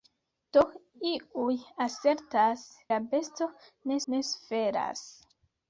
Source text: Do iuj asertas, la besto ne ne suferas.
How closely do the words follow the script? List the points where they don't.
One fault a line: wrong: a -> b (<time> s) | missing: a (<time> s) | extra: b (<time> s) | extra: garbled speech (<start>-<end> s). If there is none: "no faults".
no faults